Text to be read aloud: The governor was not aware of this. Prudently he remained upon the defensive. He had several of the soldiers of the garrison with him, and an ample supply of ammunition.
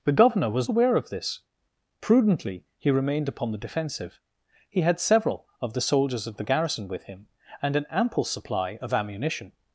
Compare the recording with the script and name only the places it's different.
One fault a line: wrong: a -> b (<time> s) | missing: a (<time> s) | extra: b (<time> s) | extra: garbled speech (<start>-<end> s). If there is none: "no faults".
missing: not (0.7 s)